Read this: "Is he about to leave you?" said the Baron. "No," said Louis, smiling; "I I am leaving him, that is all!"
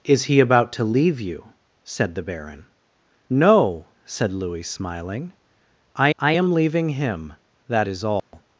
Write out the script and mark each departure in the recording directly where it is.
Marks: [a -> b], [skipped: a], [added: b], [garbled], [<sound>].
"Is he about to leave you?" said the Baron. "No," said Louis, smiling; "I I am leaving him, that is all!" [dropout]